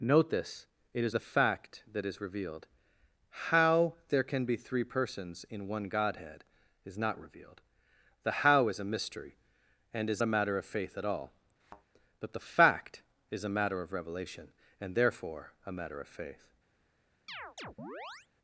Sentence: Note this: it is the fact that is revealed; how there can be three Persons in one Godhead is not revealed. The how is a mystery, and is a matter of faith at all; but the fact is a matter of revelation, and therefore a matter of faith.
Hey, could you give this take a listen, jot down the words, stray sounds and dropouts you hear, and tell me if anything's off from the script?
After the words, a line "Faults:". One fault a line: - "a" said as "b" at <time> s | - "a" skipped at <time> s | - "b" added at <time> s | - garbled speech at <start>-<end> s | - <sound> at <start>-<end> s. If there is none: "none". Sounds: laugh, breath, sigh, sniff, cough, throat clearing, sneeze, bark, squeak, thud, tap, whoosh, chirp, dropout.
Note this: it is the fact that is revealed; how there can be three Persons in one Godhead is not revealed. The how is a mystery, and is a matter of faith at all; but the fact is a matter of revelation, and therefore a matter of faith.
Faults:
- thud at 11.6-11.9 s
- chirp at 17.3-18.3 s